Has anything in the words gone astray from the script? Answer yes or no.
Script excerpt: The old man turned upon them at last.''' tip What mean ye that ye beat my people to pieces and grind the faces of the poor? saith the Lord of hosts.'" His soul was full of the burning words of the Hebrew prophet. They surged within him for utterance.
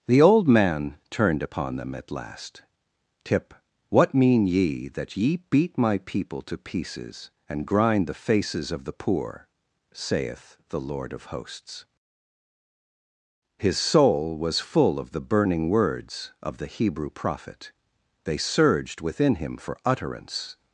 no